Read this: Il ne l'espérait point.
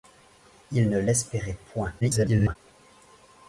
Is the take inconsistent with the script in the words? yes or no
yes